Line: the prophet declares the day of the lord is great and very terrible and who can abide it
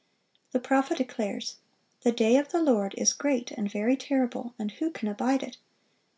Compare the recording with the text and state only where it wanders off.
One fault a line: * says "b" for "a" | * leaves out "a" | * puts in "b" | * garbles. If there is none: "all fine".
all fine